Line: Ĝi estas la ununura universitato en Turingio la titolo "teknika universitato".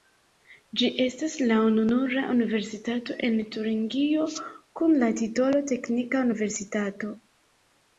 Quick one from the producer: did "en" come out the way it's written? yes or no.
yes